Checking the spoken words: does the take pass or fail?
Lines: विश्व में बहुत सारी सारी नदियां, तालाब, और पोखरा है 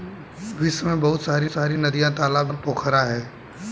pass